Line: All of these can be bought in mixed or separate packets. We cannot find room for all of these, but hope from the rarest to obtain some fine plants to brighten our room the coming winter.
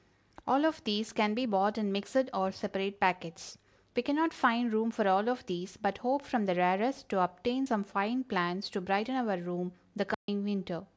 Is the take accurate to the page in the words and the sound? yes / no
no